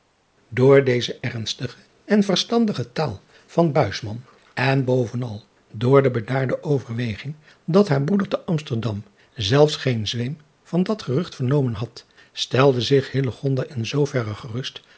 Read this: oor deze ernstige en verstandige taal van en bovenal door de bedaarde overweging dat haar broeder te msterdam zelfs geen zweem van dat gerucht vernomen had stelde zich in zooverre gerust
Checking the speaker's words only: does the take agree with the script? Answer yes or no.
yes